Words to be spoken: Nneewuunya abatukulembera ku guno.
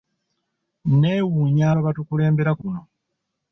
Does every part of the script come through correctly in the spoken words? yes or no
yes